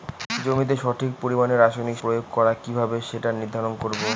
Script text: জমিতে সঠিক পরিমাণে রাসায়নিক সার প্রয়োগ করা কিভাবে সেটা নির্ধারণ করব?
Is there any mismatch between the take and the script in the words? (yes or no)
yes